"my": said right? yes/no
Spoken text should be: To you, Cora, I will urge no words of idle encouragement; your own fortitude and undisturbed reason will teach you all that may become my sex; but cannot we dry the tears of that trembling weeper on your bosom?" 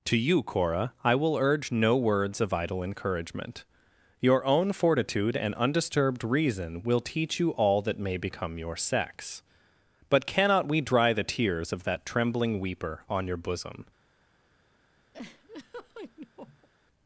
no